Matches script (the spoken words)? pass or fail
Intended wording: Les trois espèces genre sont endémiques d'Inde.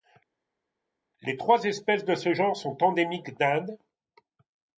fail